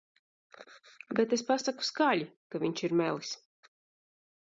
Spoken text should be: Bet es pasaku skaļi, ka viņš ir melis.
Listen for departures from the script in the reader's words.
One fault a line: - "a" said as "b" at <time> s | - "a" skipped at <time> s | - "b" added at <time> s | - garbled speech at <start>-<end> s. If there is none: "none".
none